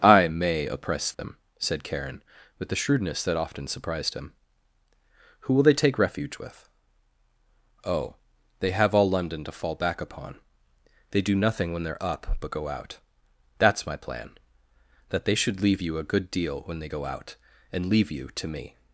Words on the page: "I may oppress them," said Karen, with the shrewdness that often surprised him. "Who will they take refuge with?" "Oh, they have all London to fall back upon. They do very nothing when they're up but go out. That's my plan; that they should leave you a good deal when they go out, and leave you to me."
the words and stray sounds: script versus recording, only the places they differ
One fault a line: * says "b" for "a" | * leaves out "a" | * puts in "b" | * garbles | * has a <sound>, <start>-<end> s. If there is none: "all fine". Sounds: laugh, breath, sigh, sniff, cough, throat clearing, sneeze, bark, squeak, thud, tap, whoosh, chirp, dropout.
* has a dropout, 1.1-1.2 s
* leaves out "very"